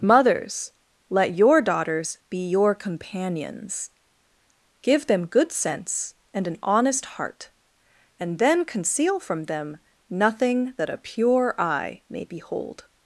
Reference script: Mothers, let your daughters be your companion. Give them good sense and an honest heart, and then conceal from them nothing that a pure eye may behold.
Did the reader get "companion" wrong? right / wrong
wrong